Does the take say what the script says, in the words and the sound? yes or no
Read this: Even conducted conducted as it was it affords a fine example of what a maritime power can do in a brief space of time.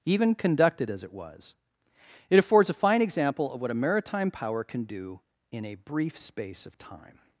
no